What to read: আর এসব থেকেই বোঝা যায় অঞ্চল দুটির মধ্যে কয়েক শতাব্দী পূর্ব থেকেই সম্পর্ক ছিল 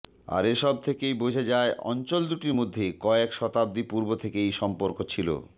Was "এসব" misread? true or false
false